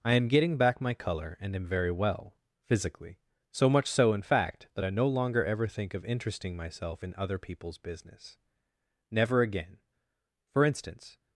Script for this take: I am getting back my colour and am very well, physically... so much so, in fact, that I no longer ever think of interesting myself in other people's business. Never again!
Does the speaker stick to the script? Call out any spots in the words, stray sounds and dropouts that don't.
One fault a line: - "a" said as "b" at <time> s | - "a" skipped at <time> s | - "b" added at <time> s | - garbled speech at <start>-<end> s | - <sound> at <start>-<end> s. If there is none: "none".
- "For instance" added at 10.5 s